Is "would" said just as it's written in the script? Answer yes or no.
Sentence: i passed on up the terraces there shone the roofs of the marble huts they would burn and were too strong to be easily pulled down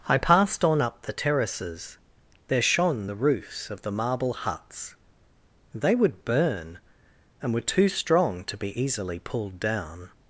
yes